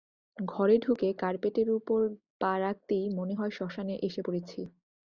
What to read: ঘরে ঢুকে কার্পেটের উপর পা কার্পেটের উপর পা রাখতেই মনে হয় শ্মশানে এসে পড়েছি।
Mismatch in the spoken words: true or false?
true